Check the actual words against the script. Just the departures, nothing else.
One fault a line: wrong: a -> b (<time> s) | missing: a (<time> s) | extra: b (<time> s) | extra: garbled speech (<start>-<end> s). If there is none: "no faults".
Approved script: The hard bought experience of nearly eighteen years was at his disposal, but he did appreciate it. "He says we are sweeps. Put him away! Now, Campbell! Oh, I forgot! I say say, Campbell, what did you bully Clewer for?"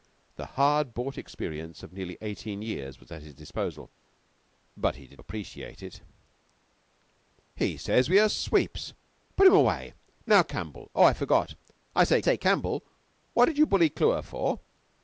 no faults